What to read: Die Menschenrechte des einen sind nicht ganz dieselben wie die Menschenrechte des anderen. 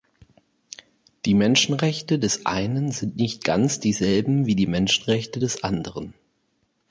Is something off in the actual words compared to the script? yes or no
no